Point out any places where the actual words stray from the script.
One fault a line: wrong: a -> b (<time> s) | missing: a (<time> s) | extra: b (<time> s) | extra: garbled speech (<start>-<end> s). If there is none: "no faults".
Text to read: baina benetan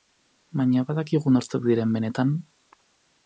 extra: badakigu nortzuk diren (0.9 s)